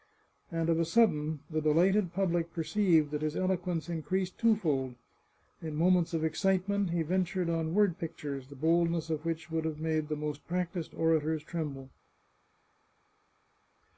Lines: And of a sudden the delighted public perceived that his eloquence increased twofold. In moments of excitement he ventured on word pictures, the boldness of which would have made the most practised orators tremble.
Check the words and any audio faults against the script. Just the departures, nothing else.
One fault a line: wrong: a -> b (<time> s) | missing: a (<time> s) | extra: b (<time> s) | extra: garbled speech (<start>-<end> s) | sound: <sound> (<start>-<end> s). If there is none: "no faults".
no faults